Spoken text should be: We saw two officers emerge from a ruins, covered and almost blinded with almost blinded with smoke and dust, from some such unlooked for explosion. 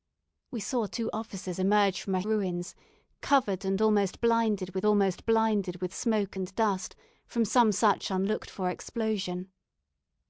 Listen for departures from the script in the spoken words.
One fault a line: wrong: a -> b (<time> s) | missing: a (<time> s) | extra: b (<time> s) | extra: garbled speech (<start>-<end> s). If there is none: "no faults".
no faults